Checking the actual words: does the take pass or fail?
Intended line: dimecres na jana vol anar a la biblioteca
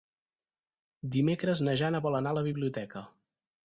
pass